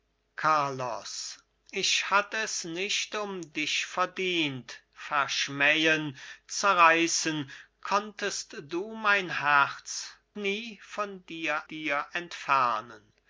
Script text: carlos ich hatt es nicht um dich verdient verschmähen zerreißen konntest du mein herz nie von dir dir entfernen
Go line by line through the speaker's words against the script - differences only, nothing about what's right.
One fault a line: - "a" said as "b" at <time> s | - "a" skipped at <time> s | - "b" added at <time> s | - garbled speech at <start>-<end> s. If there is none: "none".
none